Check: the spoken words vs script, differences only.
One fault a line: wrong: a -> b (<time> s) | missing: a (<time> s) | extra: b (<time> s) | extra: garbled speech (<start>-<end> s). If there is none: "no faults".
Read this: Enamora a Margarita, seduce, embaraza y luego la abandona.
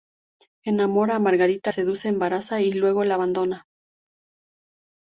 no faults